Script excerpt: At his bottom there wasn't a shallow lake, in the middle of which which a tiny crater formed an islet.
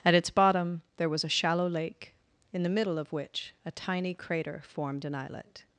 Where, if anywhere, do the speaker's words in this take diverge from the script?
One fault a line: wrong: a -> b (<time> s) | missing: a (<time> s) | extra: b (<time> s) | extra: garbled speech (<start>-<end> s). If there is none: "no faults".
wrong: his -> its (0.1 s)
wrong: wasn't -> was (1.1 s)
missing: which (3.5 s)